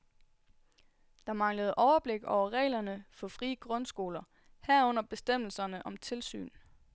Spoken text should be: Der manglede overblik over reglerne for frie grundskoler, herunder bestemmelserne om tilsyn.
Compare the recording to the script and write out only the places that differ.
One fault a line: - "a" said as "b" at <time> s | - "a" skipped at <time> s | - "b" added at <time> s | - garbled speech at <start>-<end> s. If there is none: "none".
none